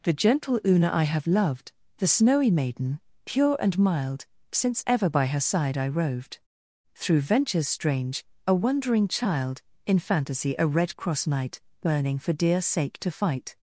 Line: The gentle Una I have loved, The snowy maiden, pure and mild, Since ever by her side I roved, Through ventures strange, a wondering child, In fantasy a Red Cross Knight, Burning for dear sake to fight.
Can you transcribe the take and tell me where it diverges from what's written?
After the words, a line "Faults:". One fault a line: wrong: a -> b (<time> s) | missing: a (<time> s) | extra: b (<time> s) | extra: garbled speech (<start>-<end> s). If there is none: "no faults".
The gentle Una I have loved, The snowy maiden, pure and mild, Since ever by her side I roved, Through ventures strange, a wondering child, In fantasy a Red Cross Knight, Burning for dear sake to fight.
Faults:
no faults